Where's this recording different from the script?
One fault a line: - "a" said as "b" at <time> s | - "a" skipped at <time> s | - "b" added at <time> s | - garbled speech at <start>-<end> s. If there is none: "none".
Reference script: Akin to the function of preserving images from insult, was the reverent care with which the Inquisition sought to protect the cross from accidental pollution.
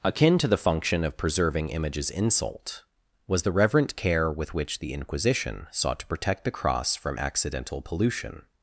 - "from" skipped at 2.1 s